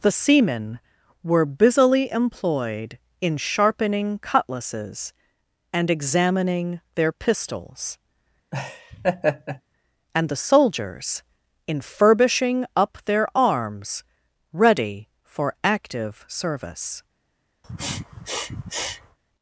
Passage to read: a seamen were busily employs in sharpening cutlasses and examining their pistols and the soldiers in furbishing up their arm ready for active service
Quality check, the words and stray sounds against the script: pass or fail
fail